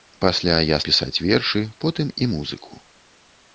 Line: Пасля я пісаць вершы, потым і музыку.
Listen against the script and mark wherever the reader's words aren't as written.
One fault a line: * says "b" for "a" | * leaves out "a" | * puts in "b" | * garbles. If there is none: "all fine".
all fine